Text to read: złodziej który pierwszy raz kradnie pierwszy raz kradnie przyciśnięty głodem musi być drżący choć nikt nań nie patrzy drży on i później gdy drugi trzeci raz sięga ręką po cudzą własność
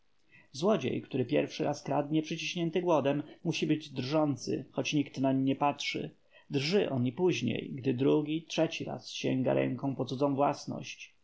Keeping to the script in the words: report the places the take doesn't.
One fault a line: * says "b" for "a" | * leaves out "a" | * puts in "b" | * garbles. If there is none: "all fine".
* leaves out "pierwszy raz kradnie"